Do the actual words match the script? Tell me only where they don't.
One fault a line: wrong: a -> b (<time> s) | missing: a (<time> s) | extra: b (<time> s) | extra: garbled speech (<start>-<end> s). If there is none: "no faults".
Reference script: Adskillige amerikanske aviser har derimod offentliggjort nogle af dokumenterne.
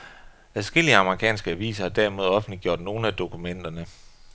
no faults